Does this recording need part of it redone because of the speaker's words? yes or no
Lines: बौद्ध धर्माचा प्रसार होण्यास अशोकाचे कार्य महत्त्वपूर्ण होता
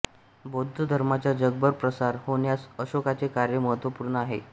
yes